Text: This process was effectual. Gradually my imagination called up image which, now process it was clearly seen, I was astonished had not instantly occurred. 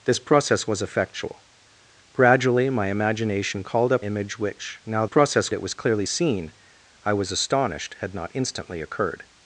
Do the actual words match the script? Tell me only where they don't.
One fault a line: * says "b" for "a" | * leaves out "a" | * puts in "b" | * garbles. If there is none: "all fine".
all fine